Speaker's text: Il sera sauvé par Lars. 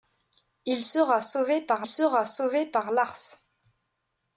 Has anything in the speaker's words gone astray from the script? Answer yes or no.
yes